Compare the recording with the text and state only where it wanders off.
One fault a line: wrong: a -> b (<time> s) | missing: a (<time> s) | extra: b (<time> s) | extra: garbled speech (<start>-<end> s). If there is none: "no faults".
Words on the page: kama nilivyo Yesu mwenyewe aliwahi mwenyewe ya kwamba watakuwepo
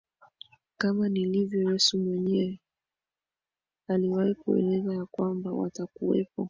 wrong: mwenyewe -> kueleza (4.3 s)